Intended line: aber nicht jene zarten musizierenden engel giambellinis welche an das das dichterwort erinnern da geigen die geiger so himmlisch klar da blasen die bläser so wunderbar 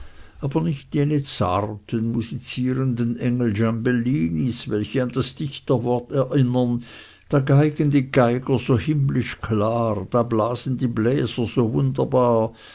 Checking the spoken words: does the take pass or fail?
fail